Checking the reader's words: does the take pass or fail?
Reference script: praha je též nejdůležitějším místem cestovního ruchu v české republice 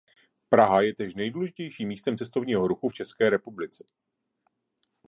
pass